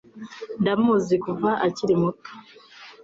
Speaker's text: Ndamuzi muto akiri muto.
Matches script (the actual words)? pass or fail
fail